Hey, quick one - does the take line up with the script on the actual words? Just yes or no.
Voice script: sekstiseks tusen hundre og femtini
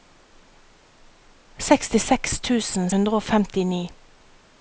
yes